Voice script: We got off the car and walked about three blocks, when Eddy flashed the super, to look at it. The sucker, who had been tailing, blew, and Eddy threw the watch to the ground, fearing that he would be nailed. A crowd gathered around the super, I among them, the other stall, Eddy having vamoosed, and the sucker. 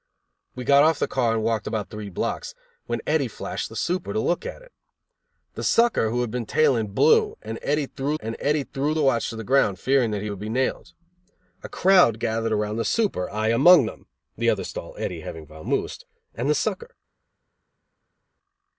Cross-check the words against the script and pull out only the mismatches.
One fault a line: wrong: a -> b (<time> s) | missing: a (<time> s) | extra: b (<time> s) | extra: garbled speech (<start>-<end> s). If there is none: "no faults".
extra: and Eddy threw (8.2 s)